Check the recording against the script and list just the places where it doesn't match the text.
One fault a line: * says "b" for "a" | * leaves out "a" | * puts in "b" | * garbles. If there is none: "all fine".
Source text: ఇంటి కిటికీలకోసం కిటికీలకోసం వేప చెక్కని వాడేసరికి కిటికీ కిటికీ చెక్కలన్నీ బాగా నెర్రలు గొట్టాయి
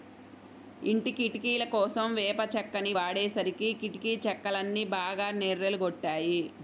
* leaves out "కిటికీలకోసం"
* leaves out "కిటికీ"